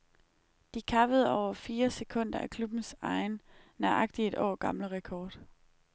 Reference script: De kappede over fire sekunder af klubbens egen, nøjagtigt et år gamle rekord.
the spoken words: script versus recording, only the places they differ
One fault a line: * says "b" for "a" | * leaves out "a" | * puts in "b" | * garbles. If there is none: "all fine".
all fine